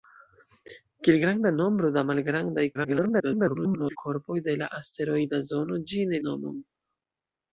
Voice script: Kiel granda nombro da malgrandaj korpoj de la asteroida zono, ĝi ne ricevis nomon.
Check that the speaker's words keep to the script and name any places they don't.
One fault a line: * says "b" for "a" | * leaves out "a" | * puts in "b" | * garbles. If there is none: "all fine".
* garbles
* leaves out "ricevis"